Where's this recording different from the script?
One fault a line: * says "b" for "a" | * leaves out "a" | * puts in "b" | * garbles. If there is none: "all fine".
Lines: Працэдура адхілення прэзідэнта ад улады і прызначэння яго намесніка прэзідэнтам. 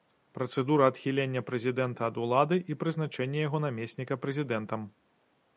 all fine